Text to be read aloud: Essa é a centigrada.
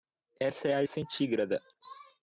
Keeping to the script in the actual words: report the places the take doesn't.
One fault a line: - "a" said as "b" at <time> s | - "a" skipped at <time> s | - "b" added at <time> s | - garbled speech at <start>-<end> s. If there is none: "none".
none